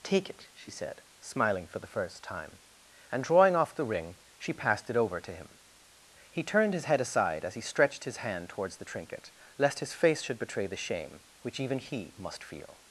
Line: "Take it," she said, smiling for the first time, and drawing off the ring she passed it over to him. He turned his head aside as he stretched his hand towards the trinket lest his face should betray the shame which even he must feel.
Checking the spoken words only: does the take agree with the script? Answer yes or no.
yes